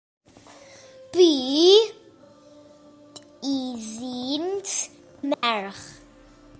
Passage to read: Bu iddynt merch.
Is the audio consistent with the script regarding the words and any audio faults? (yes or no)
no